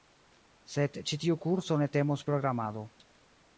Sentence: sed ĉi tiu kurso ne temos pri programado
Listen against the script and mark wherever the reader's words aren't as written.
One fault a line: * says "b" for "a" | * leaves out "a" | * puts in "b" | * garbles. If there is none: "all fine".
* leaves out "pri"